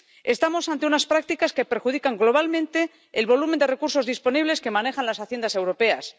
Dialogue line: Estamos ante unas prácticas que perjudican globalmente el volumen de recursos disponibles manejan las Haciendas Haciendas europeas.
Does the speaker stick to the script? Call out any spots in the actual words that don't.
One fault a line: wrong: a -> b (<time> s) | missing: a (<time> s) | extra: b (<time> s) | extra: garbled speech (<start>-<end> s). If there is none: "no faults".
extra: que (4.6 s)
missing: Haciendas (5.5 s)